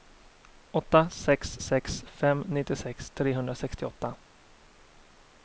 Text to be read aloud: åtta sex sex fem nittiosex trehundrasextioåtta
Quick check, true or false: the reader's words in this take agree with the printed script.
true